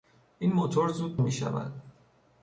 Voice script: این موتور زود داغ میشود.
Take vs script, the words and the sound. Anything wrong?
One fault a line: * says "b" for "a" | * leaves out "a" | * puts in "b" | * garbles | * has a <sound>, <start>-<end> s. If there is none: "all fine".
* leaves out "داغ"